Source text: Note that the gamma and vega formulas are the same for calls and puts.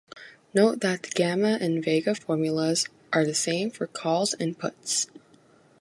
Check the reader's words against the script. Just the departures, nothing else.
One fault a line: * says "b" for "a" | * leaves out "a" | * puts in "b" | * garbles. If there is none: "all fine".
all fine